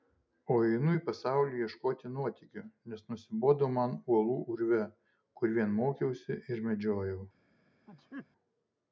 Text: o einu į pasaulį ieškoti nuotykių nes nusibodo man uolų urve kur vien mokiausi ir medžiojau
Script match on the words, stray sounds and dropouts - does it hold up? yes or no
no